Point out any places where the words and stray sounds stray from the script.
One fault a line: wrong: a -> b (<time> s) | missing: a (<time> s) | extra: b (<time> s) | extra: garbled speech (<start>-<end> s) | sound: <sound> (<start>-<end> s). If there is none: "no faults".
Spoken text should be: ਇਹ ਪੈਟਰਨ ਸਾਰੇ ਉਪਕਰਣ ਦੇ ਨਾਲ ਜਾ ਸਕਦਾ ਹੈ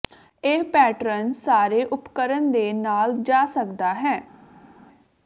no faults